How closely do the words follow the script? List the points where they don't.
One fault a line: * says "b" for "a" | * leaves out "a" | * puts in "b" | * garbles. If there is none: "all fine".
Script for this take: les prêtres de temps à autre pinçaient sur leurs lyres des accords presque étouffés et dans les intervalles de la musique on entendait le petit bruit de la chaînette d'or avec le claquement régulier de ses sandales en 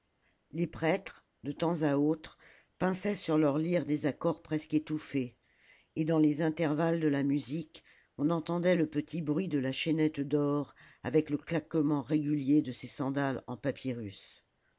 all fine